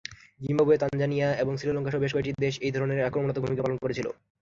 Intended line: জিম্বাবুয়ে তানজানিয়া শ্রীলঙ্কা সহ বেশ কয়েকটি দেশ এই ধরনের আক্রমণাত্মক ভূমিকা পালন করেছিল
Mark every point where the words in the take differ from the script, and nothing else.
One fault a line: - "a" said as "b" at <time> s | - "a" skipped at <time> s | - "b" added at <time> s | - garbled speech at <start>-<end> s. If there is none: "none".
- "এবং" added at 1.4 s